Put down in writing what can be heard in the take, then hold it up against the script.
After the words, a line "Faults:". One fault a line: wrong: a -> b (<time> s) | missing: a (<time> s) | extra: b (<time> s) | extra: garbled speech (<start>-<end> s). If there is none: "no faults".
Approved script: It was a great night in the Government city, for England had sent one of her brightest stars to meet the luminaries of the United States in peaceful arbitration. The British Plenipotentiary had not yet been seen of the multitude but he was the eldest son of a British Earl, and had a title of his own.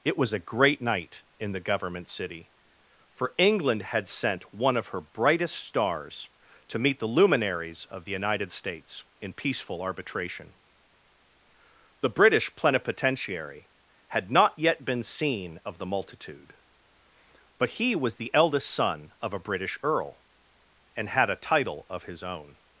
It was a great night in the Government city, for England had sent one of her brightest stars to meet the luminaries of the United States in peaceful arbitration. The British Plenipotentiary had not yet been seen of the multitude but he was the eldest son of a British Earl, and had a title of his own.
Faults:
no faults